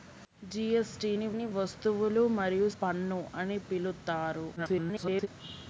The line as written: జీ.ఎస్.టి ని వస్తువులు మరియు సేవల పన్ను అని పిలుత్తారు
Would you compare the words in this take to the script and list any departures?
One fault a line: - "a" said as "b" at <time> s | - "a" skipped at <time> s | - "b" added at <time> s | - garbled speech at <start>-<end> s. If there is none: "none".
- "ని" added at 1.3 s
- "సేవల" skipped at 2.7 s
- garbled speech at 4.6-5.3 s